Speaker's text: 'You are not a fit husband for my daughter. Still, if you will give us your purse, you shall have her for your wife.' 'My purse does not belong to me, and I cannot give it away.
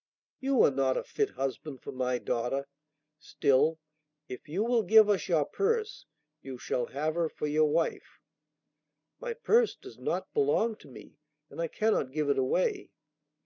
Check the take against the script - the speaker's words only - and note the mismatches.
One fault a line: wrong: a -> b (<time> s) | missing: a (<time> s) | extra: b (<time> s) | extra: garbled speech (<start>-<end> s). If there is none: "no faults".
no faults